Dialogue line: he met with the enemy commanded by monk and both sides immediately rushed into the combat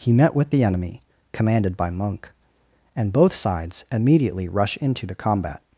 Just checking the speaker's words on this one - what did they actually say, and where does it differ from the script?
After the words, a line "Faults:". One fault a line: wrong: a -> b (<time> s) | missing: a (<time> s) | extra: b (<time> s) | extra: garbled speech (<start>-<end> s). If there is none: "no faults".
he met with the enemy commanded by monk and both sides immediately rush into the combat
Faults:
wrong: rushed -> rush (4.5 s)